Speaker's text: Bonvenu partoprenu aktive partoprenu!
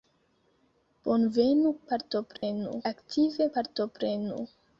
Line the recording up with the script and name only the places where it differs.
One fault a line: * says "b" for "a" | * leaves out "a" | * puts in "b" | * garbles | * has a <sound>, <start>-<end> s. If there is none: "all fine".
* has a dropout, 2.4-2.4 s